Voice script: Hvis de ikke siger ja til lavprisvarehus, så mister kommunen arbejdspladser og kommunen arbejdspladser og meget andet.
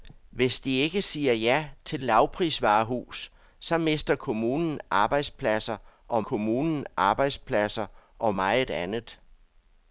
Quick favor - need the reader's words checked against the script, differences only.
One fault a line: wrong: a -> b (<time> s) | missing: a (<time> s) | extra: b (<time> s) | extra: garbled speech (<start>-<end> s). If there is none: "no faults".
no faults